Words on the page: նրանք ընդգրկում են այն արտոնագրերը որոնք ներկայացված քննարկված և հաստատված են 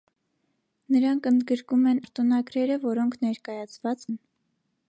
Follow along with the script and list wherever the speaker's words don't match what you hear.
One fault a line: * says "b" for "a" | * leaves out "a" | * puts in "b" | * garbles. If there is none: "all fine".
* leaves out "այն"
* leaves out "քննարկված և հաստատված"